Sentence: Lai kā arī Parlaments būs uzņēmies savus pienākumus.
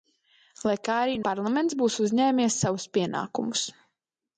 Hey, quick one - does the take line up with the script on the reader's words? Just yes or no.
yes